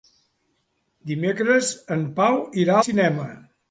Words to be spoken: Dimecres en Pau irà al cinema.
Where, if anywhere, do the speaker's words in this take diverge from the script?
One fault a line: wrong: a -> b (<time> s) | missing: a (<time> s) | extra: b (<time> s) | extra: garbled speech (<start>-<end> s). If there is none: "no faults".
missing: al (2.8 s)